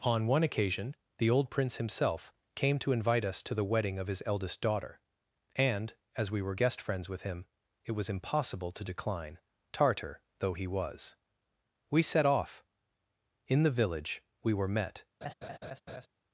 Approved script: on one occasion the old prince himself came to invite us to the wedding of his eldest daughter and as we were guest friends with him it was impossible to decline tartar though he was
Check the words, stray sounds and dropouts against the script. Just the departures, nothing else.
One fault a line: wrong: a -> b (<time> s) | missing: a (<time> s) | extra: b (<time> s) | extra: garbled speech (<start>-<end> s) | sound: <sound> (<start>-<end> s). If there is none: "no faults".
extra: we set off in the village we were met (11.9 s)
sound: laugh (15.2-16.1 s)